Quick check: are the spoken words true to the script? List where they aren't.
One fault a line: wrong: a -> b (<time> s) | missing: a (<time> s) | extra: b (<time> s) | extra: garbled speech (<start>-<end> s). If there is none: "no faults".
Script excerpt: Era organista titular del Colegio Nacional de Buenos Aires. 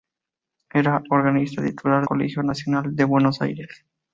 missing: del (2.1 s)